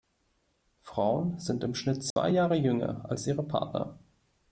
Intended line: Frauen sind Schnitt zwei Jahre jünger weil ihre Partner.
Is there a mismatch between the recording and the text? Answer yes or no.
yes